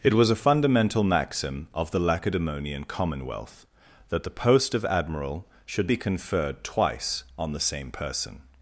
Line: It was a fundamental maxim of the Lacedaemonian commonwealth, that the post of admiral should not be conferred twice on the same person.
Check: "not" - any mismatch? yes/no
yes